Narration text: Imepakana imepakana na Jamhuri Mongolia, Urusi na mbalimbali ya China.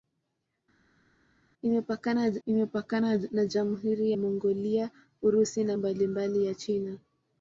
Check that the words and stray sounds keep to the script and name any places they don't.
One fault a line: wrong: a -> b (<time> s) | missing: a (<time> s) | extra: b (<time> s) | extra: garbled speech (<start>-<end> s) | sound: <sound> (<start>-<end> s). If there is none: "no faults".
no faults